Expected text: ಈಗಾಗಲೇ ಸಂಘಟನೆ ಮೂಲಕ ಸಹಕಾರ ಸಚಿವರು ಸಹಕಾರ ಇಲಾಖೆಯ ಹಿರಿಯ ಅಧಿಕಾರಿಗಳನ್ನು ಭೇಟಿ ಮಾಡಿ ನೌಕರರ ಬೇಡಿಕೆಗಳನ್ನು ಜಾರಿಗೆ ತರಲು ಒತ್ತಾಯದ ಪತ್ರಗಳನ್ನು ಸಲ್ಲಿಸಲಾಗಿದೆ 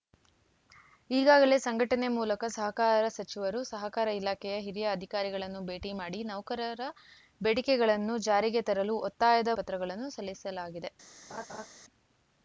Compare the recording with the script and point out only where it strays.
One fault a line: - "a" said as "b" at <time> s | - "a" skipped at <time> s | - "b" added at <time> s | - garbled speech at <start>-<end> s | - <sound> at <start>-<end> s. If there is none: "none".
- laugh at 11.3-11.7 s